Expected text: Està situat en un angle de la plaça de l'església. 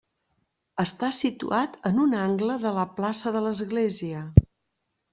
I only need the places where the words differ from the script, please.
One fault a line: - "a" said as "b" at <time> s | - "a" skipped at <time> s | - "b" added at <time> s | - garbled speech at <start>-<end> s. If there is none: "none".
none